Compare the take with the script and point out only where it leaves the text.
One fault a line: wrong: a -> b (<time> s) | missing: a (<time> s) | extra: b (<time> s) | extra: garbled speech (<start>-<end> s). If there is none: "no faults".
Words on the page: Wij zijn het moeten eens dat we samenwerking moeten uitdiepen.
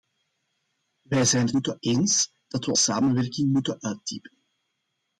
no faults